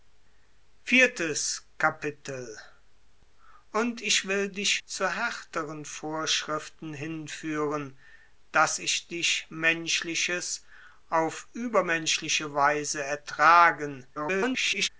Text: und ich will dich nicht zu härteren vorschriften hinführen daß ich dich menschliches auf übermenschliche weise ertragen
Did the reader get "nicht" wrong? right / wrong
wrong